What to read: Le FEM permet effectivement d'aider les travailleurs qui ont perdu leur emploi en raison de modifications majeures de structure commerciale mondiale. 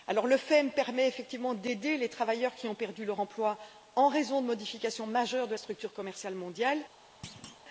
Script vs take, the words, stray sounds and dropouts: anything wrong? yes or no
yes